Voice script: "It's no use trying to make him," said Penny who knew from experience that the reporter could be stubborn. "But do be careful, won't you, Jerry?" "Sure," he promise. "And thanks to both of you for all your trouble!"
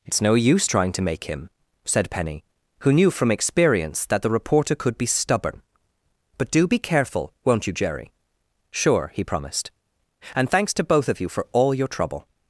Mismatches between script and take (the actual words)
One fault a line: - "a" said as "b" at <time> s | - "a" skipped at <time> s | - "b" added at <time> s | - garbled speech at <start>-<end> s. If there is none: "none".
- "promise" said as "promised" at 9.2 s